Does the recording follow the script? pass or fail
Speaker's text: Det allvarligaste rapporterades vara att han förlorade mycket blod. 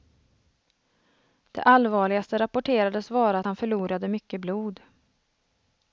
pass